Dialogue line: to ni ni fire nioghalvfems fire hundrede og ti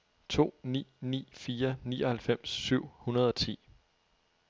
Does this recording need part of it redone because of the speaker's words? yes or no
yes